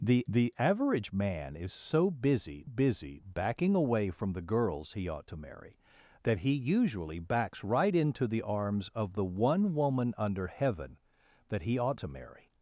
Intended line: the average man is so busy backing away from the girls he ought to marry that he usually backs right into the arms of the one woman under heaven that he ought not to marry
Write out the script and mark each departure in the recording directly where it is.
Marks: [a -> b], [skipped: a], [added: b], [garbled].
the [added: the] average man is so busy [added: busy] backing away from the girls he ought to marry that he usually backs right into the arms of the one woman under heaven that he ought [skipped: not] to marry